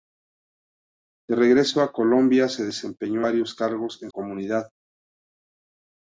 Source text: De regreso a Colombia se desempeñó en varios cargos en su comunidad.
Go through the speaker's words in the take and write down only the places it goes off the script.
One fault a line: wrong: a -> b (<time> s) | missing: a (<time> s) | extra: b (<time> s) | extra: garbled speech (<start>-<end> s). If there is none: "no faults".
missing: en (3.2 s)
missing: su (4.1 s)